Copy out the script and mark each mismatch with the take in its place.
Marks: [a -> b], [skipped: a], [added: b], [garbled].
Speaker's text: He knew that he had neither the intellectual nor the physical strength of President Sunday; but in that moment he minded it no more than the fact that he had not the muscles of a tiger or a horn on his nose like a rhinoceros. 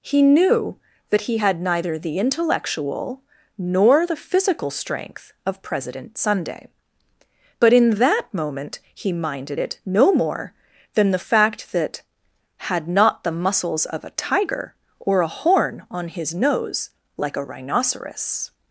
He knew that he had neither the intellectual nor the physical strength of President Sunday; but in that moment he minded it no more than the fact that [skipped: he] had not the muscles of a tiger or a horn on his nose like a rhinoceros.